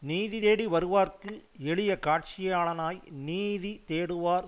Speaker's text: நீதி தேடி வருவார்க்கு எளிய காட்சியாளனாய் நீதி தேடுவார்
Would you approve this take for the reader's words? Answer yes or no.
yes